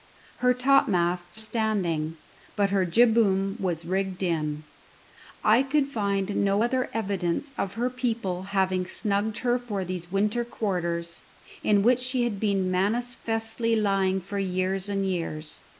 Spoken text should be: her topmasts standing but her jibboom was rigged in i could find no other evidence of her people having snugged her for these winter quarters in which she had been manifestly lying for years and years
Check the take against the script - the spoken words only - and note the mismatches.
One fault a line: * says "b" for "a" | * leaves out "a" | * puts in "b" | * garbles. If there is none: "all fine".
all fine